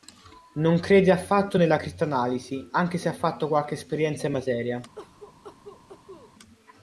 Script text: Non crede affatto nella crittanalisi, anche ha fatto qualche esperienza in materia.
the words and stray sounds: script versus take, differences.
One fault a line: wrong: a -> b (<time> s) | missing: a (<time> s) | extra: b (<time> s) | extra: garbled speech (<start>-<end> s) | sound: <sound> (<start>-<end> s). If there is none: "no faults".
extra: se (3.0 s)
sound: cough (4.9-6.3 s)